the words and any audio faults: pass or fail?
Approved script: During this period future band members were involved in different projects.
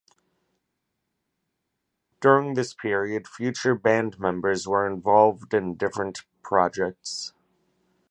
pass